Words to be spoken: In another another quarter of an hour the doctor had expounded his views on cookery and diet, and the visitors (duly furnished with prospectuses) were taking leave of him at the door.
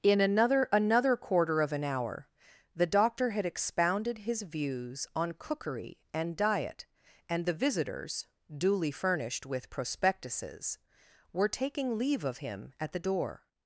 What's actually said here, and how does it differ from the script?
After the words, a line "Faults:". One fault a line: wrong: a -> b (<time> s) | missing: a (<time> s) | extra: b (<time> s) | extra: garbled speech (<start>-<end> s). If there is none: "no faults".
In another another quarter of an hour the doctor had expounded his views on cookery and diet, and the visitors (duly furnished with prospectuses) were taking leave of him at the door.
Faults:
no faults